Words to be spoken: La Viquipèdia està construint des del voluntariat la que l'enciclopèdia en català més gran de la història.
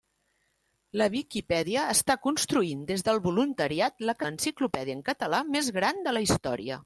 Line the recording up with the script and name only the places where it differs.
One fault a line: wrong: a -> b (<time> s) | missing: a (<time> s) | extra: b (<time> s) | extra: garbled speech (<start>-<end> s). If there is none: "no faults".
no faults